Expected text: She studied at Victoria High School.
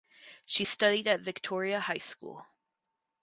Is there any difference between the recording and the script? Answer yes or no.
no